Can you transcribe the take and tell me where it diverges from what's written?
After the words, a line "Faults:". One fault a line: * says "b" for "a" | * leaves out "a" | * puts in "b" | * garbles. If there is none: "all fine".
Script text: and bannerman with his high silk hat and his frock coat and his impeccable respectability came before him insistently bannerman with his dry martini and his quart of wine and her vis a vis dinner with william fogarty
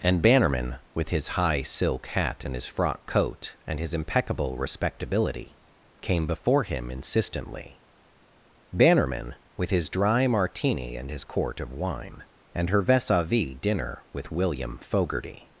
and bannerman with his high silk hat and his frock coat and his impeccable respectability came before him insistently bannerman with his dry martini and his quart of wine and her vis a vis dinner with william fogarty
Faults:
all fine